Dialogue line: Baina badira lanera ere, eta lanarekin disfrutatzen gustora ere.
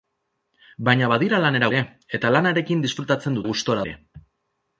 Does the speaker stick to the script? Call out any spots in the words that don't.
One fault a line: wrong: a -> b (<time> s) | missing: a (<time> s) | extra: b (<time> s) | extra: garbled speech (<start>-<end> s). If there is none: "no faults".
no faults